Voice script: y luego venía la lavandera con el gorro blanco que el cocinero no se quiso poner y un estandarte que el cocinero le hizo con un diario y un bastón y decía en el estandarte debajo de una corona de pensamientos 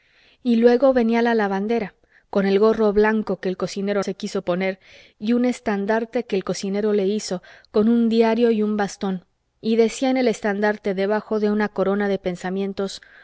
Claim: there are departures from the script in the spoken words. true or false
true